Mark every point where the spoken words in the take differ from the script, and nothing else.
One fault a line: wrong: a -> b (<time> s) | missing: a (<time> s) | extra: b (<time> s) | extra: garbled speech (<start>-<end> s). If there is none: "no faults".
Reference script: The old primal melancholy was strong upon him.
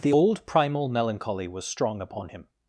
no faults